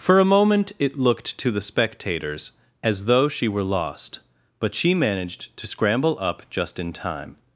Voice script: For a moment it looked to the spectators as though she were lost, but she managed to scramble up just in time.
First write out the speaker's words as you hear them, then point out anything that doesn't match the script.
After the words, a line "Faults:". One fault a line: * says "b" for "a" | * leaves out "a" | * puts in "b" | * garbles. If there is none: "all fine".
For a moment it looked to the spectators as though she were lost, but she managed to scramble up just in time.
Faults:
all fine